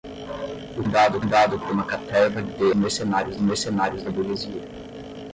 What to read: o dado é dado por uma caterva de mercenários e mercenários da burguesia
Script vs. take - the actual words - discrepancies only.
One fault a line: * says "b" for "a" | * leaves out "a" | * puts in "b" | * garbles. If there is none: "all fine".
all fine